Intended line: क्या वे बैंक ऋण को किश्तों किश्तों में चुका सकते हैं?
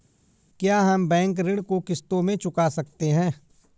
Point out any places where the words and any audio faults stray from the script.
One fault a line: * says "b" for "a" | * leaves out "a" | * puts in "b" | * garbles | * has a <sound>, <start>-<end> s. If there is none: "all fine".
* says "हम" for "वे"
* leaves out "किश्तों"